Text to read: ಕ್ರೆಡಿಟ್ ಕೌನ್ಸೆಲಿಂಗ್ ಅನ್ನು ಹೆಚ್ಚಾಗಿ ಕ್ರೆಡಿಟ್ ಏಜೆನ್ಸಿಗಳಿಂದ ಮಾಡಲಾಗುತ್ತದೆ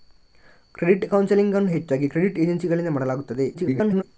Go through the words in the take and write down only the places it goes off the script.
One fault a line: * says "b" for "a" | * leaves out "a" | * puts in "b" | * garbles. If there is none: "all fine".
* garbles